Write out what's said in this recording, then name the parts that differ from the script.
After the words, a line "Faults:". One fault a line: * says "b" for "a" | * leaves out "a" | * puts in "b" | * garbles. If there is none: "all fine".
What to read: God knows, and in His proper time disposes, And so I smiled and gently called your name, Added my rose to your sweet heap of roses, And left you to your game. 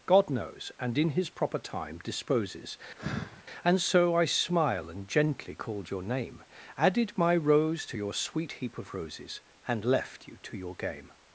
God knows, and in His proper time disposes, And so I smile and gently called your name, Added my rose to your sweet heap of roses, And left you to your game.
Faults:
* says "smile" for "smiled"